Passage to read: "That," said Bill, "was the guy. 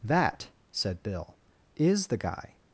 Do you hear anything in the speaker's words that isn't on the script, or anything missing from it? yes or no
yes